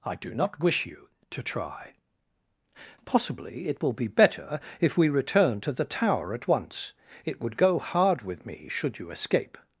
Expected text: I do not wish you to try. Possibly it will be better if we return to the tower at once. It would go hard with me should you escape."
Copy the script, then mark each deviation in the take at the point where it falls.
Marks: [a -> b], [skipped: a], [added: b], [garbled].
I do not wish you to try. Possibly it will be better if we return to the tower at once. It would go hard with me should you escape."